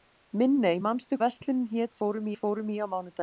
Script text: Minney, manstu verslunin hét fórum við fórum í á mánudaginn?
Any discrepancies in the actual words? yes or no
no